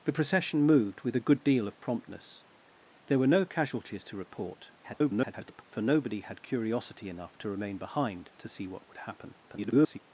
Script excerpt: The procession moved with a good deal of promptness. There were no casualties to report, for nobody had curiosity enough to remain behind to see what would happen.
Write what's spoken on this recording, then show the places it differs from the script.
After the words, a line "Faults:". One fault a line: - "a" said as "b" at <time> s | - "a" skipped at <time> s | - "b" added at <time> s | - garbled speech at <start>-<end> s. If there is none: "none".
The procession moved with a good deal of promptness. There were no casualties to report, [garbled] for nobody had curiosity enough to remain behind to see what would happen. [garbled]
Faults:
- garbled speech at 4.8-5.6 s
- garbled speech at 9.4-10.0 s